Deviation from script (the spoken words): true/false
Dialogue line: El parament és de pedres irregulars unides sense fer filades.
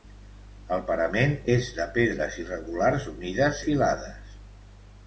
true